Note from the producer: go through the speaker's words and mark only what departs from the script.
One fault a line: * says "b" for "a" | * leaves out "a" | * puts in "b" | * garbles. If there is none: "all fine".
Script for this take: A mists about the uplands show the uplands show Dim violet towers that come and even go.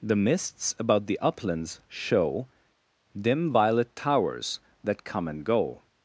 * says "The" for "A"
* leaves out "the uplands show"
* leaves out "even"